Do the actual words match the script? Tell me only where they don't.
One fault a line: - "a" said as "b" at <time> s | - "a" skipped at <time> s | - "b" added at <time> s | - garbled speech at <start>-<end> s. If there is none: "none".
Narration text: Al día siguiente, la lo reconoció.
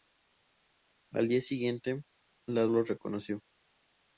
none